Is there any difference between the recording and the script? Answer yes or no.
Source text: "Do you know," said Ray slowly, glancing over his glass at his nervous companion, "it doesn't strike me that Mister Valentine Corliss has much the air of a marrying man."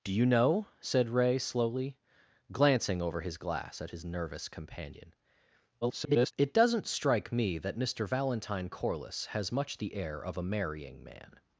yes